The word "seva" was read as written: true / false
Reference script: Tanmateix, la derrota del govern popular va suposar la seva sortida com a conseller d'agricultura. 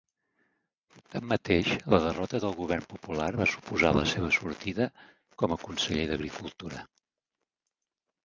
true